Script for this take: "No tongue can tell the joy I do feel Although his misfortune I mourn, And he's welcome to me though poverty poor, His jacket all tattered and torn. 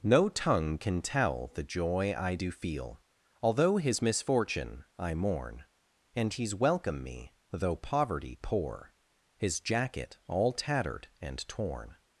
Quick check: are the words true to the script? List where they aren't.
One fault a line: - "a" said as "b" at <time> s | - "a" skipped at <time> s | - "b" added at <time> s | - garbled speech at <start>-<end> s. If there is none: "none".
- "to" skipped at 7.0 s